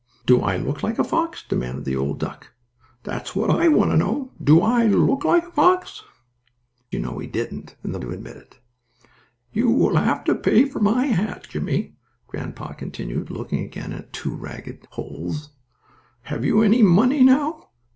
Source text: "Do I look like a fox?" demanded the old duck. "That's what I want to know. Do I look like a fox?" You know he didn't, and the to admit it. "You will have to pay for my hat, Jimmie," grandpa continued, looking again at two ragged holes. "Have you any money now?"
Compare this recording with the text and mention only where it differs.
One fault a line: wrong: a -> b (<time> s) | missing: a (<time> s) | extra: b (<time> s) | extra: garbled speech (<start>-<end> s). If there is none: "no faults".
no faults